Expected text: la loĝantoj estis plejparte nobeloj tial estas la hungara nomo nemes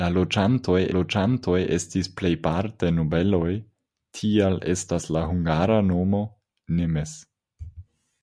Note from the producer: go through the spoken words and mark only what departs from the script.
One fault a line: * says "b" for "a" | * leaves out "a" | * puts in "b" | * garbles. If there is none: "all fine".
* puts in "loĝantoj"